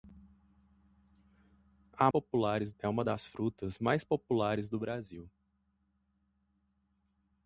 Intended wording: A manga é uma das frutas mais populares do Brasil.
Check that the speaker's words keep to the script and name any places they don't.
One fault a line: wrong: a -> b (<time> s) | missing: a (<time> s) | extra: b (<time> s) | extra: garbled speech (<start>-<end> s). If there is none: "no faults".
wrong: manga -> populares (2.1 s)